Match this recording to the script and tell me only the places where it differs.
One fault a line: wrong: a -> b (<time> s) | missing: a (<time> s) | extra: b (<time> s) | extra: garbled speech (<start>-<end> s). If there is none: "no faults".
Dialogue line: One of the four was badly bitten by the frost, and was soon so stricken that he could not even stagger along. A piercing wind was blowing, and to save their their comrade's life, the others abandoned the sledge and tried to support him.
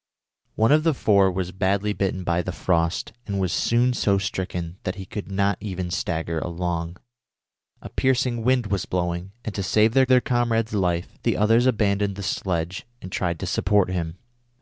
no faults